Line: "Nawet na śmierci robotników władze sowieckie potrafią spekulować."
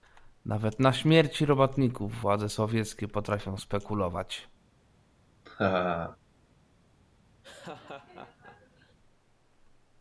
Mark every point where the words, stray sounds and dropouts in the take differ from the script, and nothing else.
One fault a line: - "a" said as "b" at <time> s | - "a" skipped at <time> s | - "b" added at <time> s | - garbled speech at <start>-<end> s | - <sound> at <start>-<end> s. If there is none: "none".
- laugh at 5.5-6.2 s
- laugh at 7.4-9.0 s